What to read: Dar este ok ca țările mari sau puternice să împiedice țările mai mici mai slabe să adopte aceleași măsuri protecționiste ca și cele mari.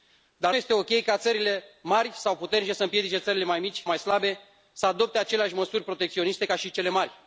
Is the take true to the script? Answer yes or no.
yes